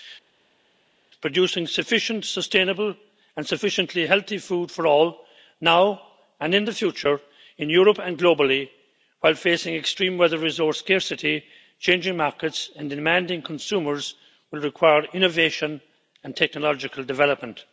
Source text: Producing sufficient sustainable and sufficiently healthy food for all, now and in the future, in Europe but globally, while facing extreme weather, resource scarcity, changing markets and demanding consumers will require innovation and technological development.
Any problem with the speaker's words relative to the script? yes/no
yes